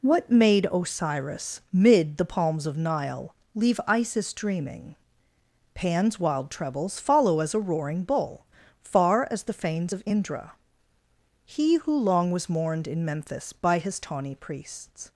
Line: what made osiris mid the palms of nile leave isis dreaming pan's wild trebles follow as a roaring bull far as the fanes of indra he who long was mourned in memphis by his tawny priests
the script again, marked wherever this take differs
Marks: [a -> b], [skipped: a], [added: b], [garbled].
what made osiris mid the palms of nile leave isis dreaming pan's wild trebles follow as a roaring bull far as the fanes of indra he who long was mourned in memphis by his tawny priests